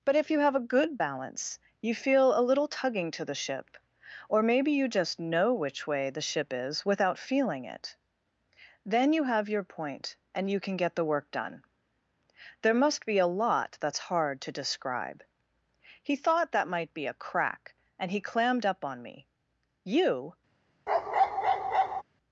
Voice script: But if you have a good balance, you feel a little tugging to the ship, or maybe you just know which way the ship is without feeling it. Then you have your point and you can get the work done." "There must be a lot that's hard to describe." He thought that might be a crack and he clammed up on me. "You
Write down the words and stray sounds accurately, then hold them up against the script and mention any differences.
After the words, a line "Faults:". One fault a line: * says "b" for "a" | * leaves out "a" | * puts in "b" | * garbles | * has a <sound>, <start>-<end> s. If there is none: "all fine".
But if you have a good balance, you feel a little tugging to the ship, or maybe you just know which way the ship is without feeling it. Then you have your point and you can get the work done." "There must be a lot that's hard to describe." He thought that might be a crack and he clammed up on me. "You
Faults:
* has a bark, 20.9-22.0 s